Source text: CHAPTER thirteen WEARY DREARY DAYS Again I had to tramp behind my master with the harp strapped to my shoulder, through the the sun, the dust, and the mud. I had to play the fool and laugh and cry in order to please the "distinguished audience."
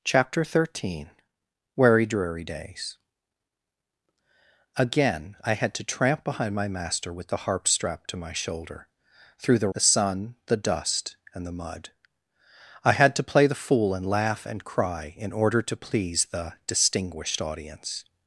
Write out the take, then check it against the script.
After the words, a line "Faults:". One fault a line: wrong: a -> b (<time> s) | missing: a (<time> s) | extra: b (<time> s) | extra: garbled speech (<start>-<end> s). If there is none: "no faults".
CHAPTER thirteen WEARY DREARY DAYS Again I had to tramp behind my master with the harp strapped to my shoulder, through the the sun, the dust, and the mud. I had to play the fool and laugh and cry in order to please the "distinguished audience."
Faults:
no faults